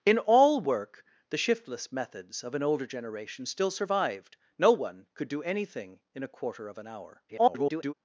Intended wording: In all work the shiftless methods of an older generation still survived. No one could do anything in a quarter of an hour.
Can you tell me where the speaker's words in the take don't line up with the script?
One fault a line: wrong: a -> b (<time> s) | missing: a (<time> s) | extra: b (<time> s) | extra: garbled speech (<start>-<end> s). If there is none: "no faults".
extra: garbled speech (7.3-7.9 s)